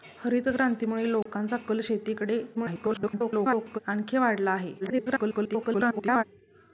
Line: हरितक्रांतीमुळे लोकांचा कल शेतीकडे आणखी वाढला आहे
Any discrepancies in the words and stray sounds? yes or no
yes